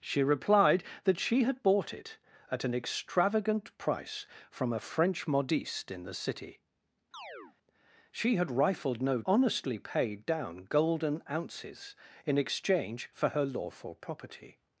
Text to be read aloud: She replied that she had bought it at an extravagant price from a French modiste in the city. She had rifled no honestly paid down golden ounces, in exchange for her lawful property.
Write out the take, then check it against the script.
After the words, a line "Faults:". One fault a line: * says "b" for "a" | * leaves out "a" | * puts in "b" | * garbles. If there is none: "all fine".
She replied that she had bought it at an extravagant price from a French modiste in the city. She had rifled no honestly paid down golden ounces, in exchange for her lawful property.
Faults:
all fine